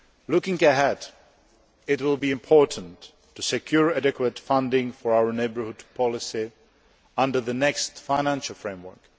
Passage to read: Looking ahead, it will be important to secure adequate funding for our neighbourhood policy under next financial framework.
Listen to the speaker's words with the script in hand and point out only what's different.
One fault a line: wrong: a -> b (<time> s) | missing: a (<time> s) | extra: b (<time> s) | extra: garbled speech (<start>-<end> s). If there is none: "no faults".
extra: the (7.4 s)